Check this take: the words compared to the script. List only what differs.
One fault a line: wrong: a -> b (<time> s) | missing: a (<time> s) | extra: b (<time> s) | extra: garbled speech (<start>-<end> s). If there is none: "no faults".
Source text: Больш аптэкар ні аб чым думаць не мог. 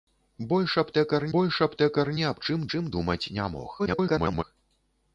extra: больш аптэкар (1.4 s)
extra: чым (2.7 s)
extra: garbled speech (3.8-4.4 s)